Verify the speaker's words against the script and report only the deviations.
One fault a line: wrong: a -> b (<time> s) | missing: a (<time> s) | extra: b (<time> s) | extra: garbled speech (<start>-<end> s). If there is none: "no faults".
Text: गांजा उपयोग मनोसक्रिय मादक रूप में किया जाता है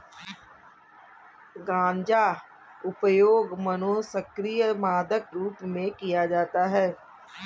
no faults